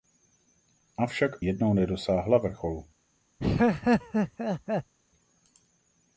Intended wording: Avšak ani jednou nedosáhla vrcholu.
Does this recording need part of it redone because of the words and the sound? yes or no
yes